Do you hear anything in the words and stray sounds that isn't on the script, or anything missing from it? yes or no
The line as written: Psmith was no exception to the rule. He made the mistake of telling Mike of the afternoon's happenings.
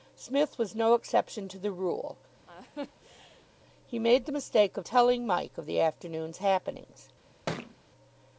yes